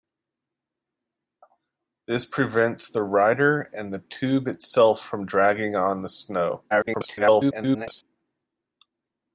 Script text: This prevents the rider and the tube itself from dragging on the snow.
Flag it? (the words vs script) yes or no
yes